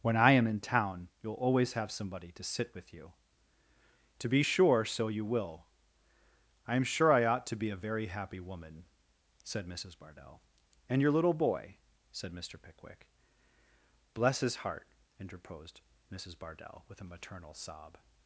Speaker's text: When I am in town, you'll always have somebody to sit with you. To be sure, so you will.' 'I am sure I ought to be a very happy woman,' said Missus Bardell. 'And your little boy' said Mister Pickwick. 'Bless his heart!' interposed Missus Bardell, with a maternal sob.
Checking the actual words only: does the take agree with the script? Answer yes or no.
yes